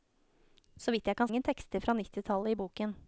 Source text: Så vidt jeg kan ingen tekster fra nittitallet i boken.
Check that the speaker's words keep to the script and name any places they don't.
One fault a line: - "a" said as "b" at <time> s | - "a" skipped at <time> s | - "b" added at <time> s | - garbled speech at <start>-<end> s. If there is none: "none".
none